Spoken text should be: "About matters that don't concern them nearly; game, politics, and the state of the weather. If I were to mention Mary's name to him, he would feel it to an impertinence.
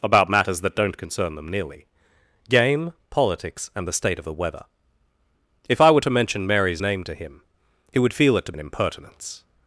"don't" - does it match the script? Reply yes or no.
yes